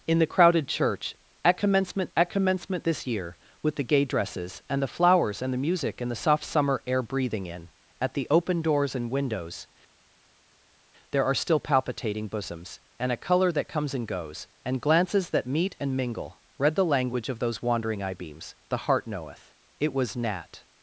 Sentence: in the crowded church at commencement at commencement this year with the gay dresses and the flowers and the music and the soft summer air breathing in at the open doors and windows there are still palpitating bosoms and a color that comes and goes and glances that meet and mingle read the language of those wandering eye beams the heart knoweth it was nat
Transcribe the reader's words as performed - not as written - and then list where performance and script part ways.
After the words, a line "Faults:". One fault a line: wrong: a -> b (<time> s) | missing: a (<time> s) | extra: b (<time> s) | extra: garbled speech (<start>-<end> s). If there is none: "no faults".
in the crowded church at commencement at commencement this year with the gay dresses and the flowers and the music and the soft summer air breathing in at the open doors and windows there are still palpitating bosoms and a color that comes and goes and glances that meet and mingle read the language of those wandering eye beams the heart knoweth it was nat
Faults:
no faults